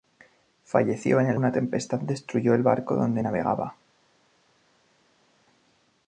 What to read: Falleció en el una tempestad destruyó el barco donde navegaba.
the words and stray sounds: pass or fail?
pass